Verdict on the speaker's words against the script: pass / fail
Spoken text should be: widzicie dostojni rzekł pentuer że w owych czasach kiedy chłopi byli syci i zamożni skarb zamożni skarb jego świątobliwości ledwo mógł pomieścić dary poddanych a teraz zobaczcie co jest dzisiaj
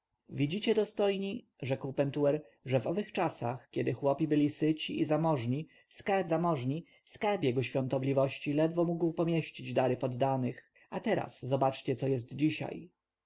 pass